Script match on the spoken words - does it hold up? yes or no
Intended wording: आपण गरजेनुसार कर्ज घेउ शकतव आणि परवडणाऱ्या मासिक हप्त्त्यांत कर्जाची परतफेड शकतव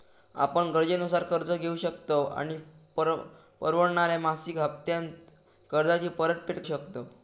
yes